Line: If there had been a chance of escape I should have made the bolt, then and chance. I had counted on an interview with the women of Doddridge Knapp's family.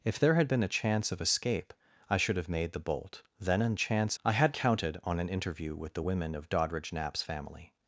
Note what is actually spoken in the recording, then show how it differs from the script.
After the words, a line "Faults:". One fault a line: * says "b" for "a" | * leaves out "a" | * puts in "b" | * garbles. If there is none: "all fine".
If there had been a chance of escape I should have made the bolt, then and chance. I had counted on an interview with the women of Doddridge Knapp's family.
Faults:
all fine